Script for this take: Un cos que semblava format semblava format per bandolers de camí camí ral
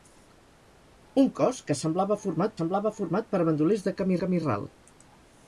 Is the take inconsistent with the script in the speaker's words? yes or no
no